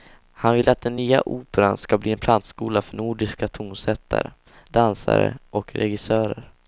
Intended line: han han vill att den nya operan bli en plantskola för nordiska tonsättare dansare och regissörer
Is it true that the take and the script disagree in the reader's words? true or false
true